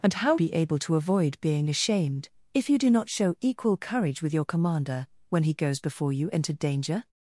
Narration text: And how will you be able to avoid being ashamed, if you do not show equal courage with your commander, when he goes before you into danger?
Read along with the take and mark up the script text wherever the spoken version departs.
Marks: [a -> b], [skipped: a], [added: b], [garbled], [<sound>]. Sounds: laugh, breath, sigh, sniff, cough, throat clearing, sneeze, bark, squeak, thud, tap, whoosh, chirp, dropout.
And how [skipped: will you] be able to avoid being ashamed, if you do not show equal courage with your commander, when he goes before you into danger?